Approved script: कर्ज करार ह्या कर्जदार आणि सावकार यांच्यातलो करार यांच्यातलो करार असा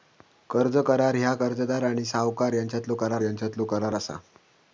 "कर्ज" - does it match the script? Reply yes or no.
yes